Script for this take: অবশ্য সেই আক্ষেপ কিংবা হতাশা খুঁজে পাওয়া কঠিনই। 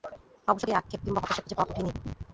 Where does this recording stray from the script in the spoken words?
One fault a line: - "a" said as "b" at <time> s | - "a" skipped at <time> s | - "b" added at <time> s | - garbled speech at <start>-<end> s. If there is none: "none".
none